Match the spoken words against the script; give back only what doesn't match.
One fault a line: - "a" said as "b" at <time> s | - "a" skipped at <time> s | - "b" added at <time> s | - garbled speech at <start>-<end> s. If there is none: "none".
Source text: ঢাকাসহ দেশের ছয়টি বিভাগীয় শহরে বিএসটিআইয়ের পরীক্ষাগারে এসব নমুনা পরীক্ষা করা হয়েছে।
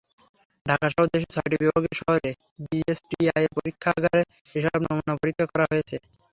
none